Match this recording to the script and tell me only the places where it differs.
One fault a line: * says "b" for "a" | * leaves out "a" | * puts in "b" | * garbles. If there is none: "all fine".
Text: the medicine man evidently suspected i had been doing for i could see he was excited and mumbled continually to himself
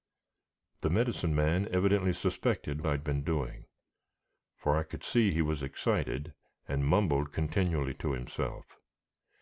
all fine